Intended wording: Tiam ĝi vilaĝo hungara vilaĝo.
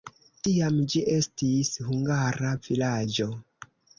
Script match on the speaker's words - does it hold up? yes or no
no